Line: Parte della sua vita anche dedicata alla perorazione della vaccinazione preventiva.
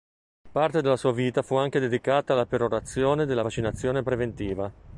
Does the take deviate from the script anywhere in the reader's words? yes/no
yes